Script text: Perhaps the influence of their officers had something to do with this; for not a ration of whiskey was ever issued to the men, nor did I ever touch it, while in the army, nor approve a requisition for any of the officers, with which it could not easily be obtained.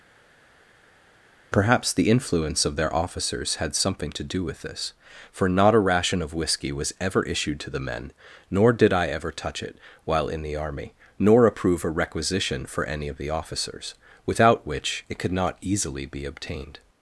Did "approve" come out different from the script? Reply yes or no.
no